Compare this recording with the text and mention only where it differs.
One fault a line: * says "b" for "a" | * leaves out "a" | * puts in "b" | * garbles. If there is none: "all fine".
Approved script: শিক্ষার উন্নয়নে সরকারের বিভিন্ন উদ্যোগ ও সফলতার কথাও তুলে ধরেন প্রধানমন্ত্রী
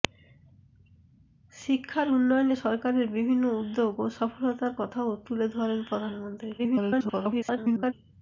* garbles